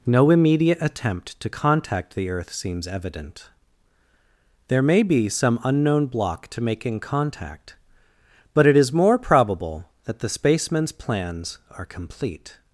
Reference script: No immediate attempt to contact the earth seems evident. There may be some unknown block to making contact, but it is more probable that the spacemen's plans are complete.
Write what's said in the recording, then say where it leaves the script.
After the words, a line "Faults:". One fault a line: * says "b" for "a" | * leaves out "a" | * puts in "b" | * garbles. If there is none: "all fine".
No immediate attempt to contact the earth seems evident. There may be some unknown block to making contact, but it is more probable that the spacemen's plans are complete.
Faults:
all fine